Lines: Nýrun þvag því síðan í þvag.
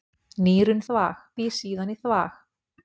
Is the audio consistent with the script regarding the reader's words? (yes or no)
yes